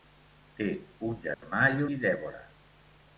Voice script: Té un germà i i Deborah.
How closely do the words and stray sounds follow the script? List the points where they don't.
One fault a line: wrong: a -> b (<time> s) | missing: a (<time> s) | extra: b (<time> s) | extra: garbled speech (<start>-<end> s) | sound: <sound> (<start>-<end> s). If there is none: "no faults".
sound: dropout (1.3-1.4 s)